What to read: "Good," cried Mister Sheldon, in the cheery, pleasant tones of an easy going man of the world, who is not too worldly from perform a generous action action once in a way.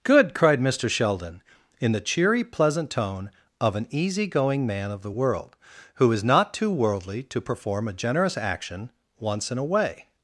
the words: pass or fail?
fail